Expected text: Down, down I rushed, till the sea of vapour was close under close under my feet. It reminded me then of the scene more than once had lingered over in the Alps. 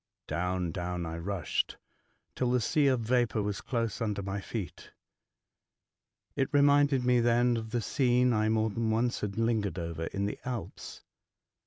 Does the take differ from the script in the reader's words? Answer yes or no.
yes